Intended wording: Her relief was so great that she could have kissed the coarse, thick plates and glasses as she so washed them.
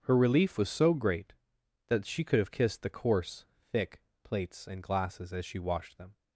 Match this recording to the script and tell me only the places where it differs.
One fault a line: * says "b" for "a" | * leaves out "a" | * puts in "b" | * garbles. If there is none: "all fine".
* leaves out "so"